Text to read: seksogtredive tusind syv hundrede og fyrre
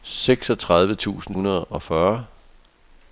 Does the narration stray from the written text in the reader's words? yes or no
yes